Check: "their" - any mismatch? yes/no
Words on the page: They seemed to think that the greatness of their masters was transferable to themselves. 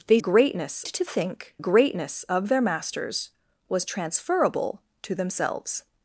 no